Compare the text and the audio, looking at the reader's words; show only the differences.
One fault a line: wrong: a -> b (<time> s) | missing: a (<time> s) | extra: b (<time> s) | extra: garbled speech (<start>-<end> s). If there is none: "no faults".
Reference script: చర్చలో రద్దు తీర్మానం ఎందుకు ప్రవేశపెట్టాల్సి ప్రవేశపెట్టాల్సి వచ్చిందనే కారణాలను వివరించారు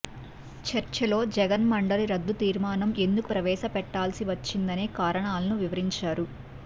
extra: జగన్ మండలి (1.4 s)
missing: ప్రవేశపెట్టాల్సి (4.2 s)